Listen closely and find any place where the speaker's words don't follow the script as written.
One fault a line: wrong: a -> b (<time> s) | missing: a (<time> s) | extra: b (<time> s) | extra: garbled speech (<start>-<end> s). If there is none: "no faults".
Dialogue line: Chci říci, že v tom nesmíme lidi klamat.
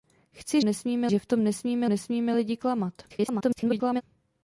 wrong: říci -> nesmíme (0.6 s)
extra: nesmíme (1.9 s)
extra: garbled speech (3.1-4.0 s)